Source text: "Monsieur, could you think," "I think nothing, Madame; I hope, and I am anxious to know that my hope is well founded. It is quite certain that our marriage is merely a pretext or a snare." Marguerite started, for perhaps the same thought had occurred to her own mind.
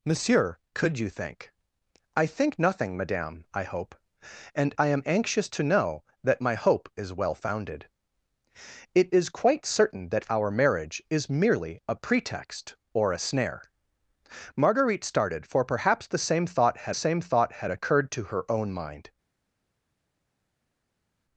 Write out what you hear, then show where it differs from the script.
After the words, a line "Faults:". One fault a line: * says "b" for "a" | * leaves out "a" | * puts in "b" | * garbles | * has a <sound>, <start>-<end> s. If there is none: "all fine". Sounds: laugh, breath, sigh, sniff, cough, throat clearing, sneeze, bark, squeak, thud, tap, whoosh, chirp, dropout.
"Monsieur, could you think," "I think nothing, Madame; I hope, and I am anxious to know that my hope is well founded. It is quite certain that our marriage is merely a pretext or a snare." Marguerite started, for perhaps the same thought had same thought had occurred to her own mind.
Faults:
* puts in "same thought had"